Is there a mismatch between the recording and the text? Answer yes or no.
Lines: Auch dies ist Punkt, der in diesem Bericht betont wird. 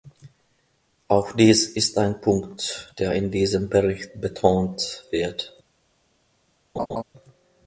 yes